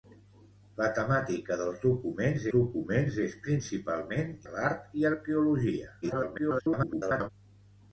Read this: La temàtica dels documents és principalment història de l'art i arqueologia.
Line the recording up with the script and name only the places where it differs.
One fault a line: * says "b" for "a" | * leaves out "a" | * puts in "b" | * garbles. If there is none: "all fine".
* puts in "documents"
* leaves out "història"
* garbles